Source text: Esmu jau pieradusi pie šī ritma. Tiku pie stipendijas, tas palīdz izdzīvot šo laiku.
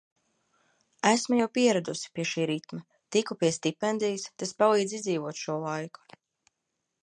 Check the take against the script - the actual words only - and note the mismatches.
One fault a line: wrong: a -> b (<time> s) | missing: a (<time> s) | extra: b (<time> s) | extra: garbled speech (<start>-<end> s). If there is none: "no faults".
no faults